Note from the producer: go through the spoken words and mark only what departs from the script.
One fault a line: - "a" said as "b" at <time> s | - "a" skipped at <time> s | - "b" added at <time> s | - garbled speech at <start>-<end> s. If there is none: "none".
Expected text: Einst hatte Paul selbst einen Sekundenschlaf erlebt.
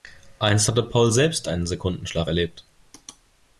none